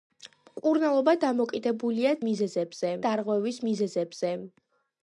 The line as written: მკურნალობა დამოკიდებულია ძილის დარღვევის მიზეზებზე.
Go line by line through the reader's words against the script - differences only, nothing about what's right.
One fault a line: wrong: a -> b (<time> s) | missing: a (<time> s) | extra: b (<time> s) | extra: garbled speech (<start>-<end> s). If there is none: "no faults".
wrong: ძილის -> მიზეზებზე (2.3 s)